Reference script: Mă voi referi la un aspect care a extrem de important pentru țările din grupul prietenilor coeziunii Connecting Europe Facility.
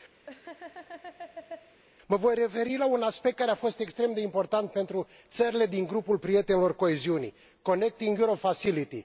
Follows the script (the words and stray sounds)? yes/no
no